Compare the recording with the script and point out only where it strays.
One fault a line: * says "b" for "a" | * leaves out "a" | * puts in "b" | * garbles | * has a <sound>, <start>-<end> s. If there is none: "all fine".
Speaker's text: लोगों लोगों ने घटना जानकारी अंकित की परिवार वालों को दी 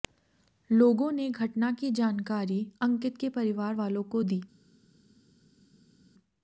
* leaves out "लोगों"
* puts in "की"
* says "के" for "की"